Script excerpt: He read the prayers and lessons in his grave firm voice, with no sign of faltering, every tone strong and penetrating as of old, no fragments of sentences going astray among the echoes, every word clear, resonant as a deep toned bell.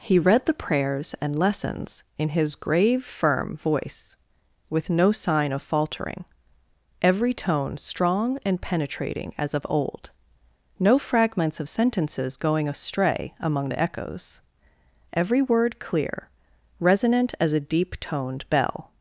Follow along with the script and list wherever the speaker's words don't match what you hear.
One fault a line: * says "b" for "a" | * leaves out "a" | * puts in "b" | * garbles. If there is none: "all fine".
all fine